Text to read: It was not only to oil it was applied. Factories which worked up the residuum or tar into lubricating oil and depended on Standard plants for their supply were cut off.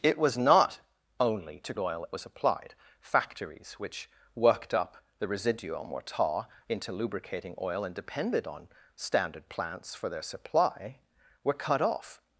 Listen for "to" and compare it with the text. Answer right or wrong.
right